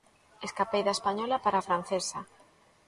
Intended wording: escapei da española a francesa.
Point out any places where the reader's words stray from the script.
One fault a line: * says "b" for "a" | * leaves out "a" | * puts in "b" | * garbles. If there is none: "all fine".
* puts in "para"